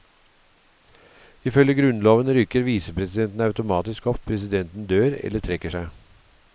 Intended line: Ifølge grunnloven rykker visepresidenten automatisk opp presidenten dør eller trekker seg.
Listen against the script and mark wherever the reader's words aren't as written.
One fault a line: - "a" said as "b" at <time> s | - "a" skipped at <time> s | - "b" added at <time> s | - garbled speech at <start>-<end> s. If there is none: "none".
none